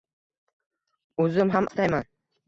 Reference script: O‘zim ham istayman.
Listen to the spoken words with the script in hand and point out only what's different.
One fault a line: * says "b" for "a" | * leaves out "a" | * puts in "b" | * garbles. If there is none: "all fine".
all fine